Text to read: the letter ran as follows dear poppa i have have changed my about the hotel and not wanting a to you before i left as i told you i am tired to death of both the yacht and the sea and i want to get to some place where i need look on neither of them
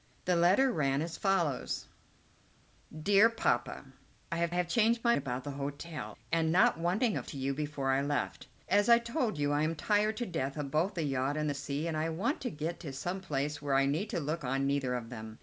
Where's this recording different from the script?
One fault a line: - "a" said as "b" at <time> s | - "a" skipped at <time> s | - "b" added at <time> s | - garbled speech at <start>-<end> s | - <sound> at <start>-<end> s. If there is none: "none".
none